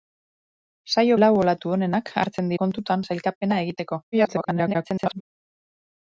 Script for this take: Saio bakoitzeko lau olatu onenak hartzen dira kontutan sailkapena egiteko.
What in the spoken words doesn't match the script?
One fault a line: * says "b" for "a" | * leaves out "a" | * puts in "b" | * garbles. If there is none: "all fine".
* leaves out "bakoitzeko"
* leaves out "dira"
* garbles